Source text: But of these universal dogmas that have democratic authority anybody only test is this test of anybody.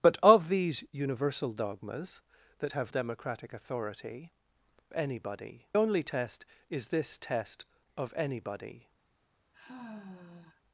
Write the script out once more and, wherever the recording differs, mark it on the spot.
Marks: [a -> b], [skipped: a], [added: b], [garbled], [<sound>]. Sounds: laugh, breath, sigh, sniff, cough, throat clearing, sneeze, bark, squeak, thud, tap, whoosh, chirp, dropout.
But of these universal dogmas that have democratic authority anybody only test is this test of anybody. [sigh]